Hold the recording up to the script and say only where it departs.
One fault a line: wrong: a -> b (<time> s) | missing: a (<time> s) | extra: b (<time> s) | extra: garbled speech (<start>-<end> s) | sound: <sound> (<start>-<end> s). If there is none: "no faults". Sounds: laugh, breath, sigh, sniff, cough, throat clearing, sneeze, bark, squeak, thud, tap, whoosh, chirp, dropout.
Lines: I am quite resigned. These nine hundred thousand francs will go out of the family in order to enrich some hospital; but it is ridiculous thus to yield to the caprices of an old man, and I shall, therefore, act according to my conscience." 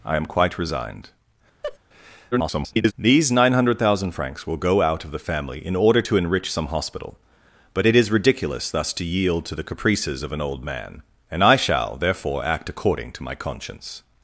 sound: laugh (1.6-1.8 s)
extra: garbled speech (2.3-2.9 s)